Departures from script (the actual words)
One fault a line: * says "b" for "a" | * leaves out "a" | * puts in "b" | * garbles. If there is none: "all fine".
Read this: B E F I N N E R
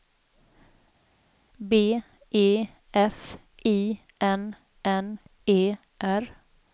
all fine